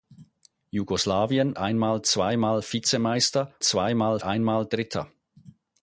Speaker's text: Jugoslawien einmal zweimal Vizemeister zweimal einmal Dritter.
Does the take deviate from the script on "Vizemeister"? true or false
false